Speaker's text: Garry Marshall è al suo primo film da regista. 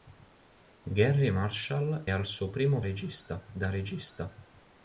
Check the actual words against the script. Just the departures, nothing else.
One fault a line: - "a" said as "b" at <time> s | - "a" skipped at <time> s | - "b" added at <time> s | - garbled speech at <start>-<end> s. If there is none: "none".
- "è" skipped at 2.1 s
- "film" said as "regista" at 2.8 s